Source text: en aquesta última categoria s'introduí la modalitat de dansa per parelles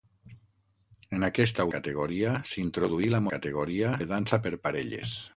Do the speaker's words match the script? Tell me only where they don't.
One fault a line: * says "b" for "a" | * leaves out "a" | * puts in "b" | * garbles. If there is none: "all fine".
* leaves out "última"
* says "categoria" for "modalitat"